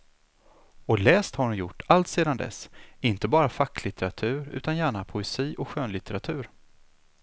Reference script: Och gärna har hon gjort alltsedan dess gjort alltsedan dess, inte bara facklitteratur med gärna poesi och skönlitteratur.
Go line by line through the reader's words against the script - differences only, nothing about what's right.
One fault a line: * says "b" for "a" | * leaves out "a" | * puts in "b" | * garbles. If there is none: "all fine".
* says "läst" for "gärna"
* leaves out "gjort alltsedan dess"
* says "utan" for "med"